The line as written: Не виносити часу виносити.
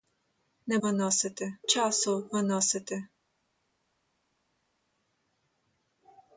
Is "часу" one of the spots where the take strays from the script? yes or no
no